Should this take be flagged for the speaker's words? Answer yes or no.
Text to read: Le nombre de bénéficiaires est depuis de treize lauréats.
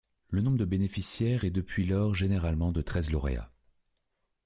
yes